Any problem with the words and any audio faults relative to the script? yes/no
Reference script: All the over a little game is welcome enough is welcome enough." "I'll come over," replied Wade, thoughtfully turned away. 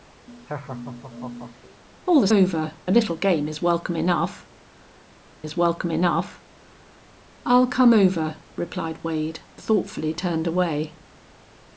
yes